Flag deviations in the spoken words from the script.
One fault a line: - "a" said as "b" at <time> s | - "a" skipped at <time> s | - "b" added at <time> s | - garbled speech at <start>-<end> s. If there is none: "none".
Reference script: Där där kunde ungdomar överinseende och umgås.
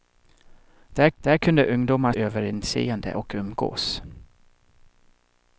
none